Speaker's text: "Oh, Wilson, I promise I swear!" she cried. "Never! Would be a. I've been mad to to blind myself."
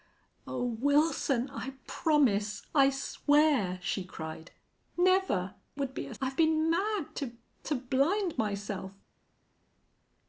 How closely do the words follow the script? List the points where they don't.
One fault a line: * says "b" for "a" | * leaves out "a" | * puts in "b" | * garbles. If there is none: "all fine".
all fine